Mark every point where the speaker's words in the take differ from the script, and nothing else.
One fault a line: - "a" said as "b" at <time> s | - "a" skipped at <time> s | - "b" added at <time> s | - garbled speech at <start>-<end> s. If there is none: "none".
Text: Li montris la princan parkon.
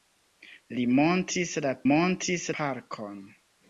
- "princan" said as "montris" at 1.9 s